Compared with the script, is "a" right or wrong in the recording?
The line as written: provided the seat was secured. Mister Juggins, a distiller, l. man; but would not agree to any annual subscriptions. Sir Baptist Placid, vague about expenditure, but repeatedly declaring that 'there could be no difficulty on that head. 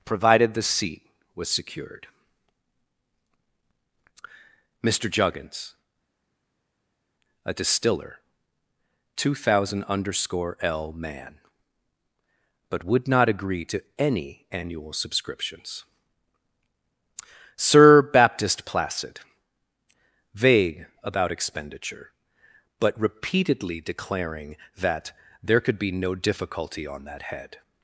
right